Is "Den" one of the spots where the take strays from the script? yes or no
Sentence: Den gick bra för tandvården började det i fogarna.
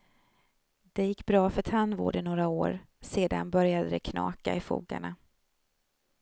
yes